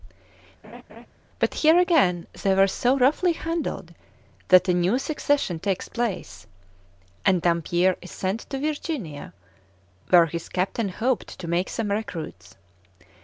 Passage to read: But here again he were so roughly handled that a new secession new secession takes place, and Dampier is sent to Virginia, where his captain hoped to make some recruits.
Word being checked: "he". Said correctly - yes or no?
no